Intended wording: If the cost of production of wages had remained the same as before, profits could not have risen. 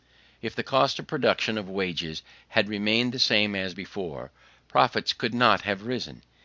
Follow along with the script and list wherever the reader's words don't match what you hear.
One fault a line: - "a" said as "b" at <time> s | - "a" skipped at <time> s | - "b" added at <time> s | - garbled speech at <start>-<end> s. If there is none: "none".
none